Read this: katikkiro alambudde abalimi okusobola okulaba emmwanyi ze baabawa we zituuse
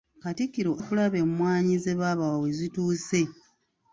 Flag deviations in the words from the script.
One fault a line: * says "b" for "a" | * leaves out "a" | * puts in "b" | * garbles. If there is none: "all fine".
* leaves out "alambudde abalimi okusobola"